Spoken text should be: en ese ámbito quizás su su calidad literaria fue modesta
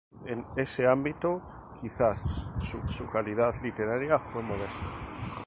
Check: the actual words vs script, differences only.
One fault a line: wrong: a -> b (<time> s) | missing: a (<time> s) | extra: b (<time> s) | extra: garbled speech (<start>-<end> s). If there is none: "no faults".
no faults